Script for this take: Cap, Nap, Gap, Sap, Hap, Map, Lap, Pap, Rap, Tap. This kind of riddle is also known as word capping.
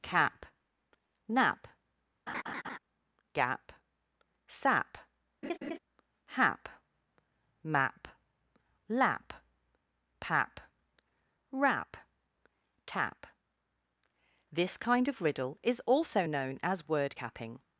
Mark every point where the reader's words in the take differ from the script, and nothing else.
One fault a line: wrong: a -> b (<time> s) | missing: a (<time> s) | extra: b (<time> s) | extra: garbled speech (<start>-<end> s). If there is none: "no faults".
no faults